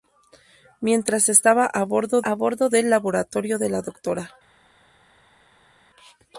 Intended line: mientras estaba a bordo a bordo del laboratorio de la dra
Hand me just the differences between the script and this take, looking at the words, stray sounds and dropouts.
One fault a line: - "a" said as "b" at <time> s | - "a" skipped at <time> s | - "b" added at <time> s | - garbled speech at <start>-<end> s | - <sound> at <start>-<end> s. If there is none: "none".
none